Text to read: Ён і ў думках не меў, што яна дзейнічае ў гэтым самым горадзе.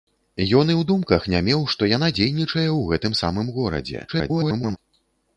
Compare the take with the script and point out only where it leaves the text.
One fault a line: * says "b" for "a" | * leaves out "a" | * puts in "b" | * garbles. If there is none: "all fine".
* garbles